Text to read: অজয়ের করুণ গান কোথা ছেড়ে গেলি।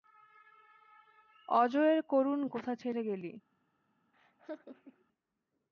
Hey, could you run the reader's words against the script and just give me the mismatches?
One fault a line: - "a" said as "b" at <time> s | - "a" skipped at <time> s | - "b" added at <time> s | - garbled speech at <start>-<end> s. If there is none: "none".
- "গান" skipped at 2.4 s